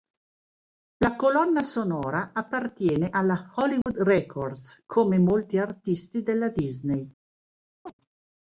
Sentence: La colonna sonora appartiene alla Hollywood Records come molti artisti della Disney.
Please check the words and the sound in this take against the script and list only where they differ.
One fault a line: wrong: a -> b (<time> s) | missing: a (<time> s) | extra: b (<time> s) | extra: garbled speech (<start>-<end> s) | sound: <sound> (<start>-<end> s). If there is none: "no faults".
sound: dropout (3.8-3.9 s)
sound: chirp (7.9-7.9 s)